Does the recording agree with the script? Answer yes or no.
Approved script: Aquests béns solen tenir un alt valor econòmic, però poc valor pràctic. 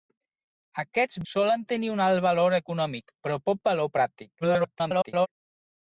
no